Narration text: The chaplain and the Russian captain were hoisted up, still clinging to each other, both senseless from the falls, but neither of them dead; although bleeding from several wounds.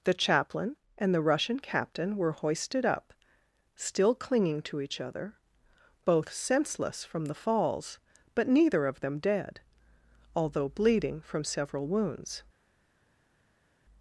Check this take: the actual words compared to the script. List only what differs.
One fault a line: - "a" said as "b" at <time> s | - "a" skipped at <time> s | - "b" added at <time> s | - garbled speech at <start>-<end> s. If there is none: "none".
none